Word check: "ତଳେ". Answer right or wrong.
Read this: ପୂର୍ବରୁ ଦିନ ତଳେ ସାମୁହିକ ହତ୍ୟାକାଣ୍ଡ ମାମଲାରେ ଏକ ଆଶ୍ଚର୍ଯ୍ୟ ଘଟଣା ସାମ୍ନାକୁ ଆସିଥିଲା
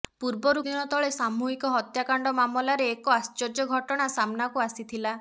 right